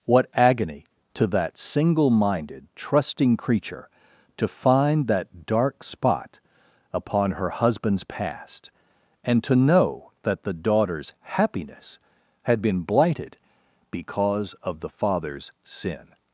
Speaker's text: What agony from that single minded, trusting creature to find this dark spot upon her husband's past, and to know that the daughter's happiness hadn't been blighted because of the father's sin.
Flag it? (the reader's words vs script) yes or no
yes